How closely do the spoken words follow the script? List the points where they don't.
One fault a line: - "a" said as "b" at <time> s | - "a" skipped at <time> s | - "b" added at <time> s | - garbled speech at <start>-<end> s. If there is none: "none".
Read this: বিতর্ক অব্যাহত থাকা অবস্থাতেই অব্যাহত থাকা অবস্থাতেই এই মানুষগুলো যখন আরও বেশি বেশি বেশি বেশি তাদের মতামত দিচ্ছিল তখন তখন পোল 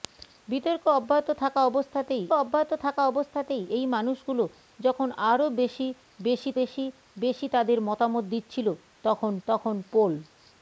none